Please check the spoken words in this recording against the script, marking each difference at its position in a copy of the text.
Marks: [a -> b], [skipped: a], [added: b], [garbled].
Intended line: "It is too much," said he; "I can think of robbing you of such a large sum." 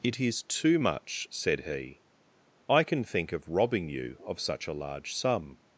"It is too much," said he; "I can think of robbing you of such a large sum."